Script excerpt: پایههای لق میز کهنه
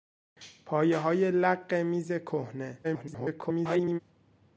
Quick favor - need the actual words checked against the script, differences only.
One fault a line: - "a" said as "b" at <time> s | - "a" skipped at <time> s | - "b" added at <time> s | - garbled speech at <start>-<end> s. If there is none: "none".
- garbled speech at 2.8-4.0 s